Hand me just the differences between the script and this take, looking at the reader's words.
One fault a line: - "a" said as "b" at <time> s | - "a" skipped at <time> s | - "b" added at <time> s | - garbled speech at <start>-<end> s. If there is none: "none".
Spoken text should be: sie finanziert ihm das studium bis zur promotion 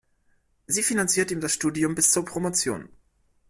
none